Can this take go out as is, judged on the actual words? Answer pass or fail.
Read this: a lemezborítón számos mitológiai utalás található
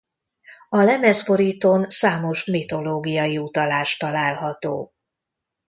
pass